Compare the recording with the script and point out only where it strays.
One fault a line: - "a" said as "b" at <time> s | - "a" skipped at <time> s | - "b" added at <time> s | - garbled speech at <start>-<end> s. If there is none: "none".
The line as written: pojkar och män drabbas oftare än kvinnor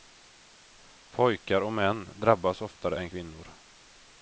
none